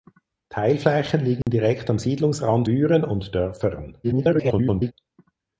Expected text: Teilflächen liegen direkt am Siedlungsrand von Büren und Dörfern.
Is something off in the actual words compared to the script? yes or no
yes